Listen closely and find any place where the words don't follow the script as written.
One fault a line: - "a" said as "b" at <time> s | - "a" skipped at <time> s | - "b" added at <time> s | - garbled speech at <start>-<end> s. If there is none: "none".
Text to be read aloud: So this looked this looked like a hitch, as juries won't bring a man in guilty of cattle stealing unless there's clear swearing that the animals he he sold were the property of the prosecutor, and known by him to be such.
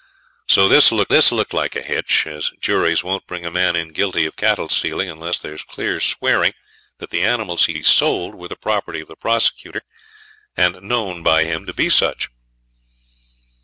none